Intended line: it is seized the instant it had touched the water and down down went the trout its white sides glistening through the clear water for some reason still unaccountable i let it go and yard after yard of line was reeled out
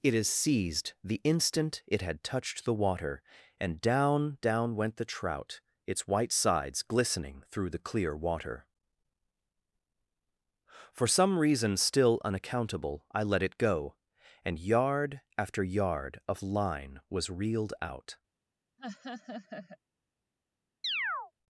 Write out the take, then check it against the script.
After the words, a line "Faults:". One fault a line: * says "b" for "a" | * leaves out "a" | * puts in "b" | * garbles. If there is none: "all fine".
it is seized the instant it had touched the water and down down went the trout its white sides glistening through the clear water for some reason still unaccountable i let it go and yard after yard of line was reeled out
Faults:
all fine